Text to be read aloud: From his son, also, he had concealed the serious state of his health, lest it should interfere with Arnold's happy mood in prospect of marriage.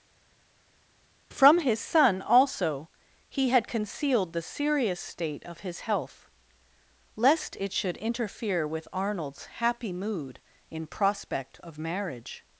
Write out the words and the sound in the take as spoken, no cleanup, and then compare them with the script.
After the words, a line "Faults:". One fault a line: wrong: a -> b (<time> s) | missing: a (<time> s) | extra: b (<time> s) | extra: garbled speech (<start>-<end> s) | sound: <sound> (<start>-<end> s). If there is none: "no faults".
From his son, also, he had concealed the serious state of his health, lest it should interfere with Arnold's happy mood in prospect of marriage.
Faults:
no faults